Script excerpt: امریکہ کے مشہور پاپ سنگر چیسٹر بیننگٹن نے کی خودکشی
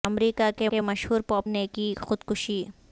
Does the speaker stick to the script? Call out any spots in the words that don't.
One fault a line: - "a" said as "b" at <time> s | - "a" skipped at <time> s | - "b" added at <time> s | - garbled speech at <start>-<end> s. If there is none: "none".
- "کے" added at 0.7 s
- "سنگر چیسٹر بیننگٹن" skipped at 1.5 s